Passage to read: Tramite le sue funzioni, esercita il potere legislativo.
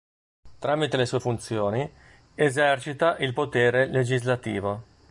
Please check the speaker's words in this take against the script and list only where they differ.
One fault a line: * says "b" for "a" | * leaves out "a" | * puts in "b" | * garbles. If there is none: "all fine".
all fine